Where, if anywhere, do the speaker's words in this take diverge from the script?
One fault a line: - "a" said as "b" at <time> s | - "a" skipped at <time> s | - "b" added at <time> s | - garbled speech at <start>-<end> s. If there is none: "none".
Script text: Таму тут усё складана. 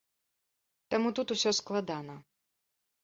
none